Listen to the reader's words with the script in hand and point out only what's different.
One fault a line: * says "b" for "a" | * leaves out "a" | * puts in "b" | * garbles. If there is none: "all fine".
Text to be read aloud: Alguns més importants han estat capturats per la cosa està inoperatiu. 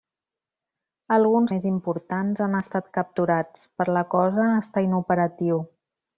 all fine